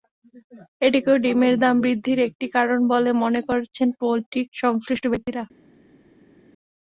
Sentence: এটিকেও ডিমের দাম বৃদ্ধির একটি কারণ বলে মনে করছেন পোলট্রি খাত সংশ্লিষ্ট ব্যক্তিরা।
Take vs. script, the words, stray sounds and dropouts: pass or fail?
fail